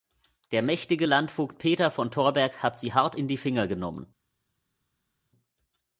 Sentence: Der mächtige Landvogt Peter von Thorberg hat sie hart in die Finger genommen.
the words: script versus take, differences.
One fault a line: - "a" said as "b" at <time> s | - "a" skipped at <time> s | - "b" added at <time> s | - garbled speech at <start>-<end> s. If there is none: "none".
none